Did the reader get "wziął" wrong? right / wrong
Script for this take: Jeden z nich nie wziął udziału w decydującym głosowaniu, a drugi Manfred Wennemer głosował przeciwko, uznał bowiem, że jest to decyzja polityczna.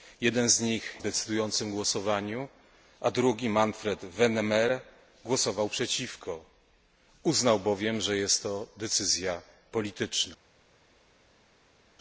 wrong